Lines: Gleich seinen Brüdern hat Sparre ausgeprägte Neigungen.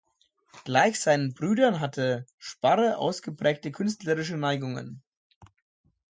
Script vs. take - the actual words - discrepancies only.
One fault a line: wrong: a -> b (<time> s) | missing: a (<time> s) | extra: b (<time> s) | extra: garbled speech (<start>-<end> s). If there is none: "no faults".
wrong: hat -> hatte (1.8 s)
extra: künstlerische (3.7 s)